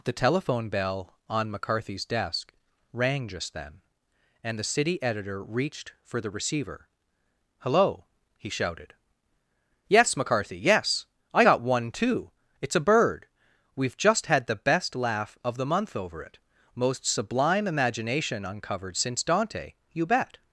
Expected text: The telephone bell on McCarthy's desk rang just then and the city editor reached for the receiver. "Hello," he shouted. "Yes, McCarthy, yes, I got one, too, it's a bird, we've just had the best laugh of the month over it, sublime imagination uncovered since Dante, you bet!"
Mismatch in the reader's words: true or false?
true